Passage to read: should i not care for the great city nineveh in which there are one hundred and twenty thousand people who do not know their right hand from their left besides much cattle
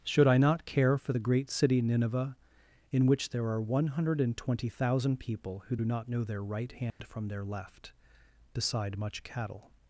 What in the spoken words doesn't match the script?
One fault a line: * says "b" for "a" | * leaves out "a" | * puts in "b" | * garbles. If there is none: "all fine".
* says "beside" for "besides"